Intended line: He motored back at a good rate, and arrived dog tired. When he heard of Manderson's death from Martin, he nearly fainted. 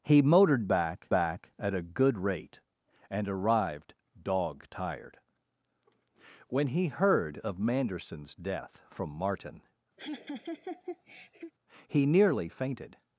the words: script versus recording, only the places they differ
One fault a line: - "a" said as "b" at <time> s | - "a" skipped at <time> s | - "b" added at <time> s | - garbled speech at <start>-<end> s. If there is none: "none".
- "back" added at 1.1 s